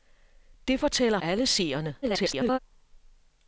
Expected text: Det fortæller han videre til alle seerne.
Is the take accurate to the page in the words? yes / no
no